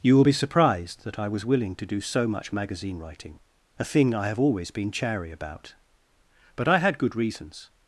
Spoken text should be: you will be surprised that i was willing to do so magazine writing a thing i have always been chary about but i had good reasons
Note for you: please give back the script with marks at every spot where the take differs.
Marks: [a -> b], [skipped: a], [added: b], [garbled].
you will be surprised that i was willing to do so [added: much] magazine writing a thing i have always been chary about but i had good reasons